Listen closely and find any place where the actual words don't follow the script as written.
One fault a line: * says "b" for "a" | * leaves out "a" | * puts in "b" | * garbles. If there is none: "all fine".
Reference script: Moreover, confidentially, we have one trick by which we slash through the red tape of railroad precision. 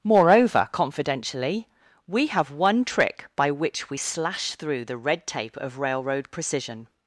all fine